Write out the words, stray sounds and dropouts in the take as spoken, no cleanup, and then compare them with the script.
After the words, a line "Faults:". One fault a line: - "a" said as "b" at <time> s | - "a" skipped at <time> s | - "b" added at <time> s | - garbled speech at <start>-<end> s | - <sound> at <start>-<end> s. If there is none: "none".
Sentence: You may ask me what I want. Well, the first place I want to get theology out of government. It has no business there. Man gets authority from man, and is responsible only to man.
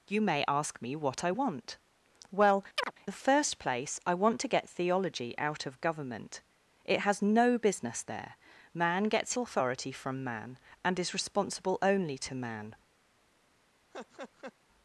You may ask me what I want. Well, the first place I want to get theology out of government. It has no business there. Man gets authority from man, and is responsible only to man.
Faults:
- chirp at 2.8-2.9 s
- laugh at 13.9-14.5 s